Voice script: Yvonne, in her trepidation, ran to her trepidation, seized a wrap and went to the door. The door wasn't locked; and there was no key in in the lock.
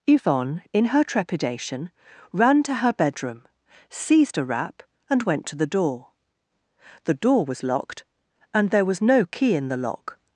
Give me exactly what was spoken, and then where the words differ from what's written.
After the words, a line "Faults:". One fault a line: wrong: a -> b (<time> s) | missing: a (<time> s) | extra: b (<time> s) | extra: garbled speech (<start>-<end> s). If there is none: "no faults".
Yvonne, in her trepidation, ran to her bedroom, seized a wrap and went to the door. The door was locked; and there was no key in the lock.
Faults:
wrong: trepidation -> bedroom (2.9 s)
wrong: wasn't -> was (7.5 s)
missing: in (9.7 s)